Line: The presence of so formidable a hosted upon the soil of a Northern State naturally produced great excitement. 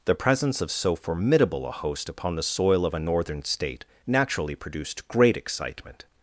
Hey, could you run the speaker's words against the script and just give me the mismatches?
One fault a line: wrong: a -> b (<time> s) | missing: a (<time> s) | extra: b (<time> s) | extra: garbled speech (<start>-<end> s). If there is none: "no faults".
wrong: hosted -> host (1.7 s)